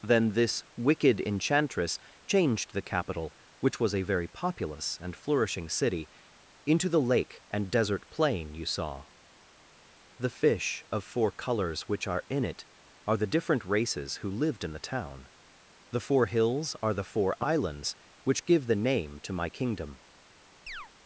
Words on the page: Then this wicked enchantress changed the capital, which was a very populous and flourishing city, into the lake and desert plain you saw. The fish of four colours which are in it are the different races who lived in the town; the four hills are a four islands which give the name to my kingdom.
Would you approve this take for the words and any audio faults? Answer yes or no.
no